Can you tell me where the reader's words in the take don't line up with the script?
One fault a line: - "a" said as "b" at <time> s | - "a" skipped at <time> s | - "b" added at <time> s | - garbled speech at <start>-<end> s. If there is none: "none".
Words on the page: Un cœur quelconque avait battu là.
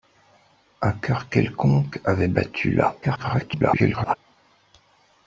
- garbled speech at 3.0-4.2 s